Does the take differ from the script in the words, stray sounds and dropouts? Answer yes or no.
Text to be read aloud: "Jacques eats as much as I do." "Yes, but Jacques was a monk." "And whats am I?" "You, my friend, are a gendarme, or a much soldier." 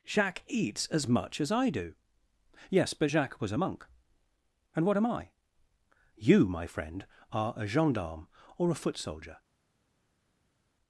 yes